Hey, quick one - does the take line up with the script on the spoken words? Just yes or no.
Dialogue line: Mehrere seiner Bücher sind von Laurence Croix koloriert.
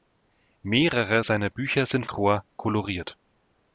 no